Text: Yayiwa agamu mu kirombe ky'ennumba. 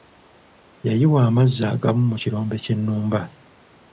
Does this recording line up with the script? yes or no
no